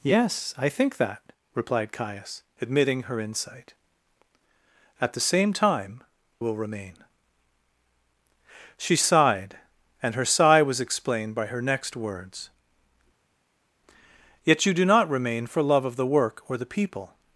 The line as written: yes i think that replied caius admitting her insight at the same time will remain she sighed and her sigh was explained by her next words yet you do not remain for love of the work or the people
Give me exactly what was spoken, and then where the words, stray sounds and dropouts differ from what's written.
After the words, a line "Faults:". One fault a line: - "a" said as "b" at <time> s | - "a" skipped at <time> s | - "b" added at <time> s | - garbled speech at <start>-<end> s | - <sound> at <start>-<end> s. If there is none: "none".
yes i think that replied caius admitting her insight at the same time will remain she sighed and her sigh was explained by her next words yet you do not remain for love of the work or the people
Faults:
none